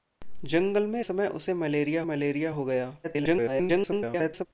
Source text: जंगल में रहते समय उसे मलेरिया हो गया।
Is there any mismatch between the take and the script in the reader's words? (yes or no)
yes